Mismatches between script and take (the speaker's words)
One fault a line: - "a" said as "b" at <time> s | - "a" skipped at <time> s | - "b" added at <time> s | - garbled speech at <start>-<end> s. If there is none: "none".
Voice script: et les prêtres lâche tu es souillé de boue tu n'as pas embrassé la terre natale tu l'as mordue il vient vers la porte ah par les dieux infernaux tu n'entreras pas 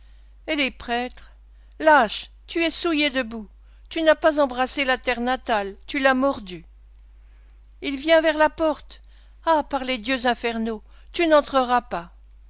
none